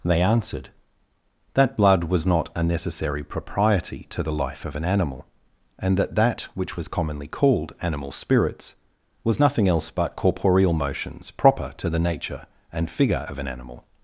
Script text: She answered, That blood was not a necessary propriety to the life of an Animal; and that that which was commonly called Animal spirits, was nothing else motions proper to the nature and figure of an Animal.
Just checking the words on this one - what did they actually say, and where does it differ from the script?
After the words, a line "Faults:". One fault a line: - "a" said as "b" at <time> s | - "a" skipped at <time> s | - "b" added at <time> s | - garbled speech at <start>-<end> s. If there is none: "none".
They answered, That blood was not a necessary propriety to the life of an Animal; and that that which was commonly called Animal spirits, was nothing else but corporeal motions proper to the nature and figure of an Animal.
Faults:
- "She" said as "They" at 0.0 s
- "but corporeal" added at 9.9 s